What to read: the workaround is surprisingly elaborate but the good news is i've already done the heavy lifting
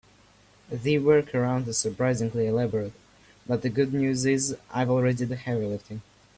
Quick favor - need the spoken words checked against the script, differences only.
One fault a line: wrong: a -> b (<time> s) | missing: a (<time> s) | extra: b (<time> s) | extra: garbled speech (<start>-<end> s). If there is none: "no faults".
missing: done (5.3 s)